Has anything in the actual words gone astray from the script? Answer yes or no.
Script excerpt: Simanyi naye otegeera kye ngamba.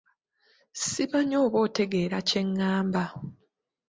yes